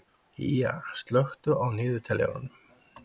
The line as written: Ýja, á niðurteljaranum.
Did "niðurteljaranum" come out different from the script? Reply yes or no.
no